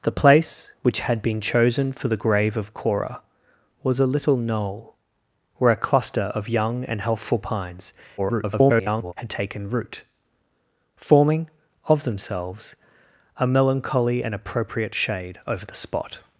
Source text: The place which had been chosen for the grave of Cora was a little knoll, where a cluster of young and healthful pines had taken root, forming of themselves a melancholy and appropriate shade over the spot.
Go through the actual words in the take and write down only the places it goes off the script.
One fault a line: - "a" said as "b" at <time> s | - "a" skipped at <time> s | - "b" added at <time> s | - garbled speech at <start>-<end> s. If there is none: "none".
- garbled speech at 8.2-9.1 s